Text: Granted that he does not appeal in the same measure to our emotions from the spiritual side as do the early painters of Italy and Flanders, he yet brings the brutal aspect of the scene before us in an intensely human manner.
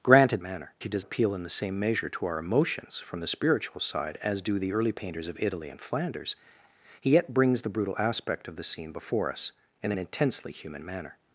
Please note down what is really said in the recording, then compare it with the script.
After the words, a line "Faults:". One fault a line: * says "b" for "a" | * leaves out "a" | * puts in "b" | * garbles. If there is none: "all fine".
Granted manner he does appeal in the same measure to our emotions from the spiritual side as do the early painters of Italy and Flanders, he yet brings the brutal aspect of the scene before us in an intensely human manner.
Faults:
* says "manner" for "that"
* leaves out "not"